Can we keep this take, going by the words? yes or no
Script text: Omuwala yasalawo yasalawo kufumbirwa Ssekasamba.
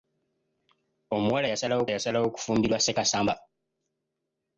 yes